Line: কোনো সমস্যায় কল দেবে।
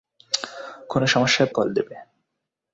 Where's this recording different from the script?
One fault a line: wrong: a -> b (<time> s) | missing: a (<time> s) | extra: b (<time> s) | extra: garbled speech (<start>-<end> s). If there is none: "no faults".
no faults